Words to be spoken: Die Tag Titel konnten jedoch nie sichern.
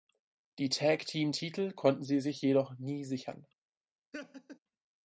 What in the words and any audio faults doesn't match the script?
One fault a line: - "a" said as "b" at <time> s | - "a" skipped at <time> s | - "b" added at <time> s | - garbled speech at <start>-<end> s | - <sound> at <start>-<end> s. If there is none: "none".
- "Team" added at 1.1 s
- "sie sich" added at 2.0 s
- laugh at 4.1-4.6 s